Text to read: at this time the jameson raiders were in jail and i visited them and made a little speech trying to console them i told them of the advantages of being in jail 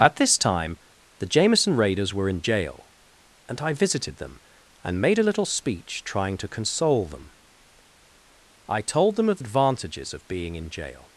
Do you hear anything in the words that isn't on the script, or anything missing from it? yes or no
yes